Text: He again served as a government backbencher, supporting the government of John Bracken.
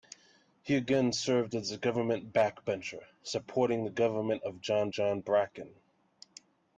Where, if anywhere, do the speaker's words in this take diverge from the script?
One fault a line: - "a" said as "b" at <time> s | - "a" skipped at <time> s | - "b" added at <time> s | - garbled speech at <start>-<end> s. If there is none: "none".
- "John" added at 4.9 s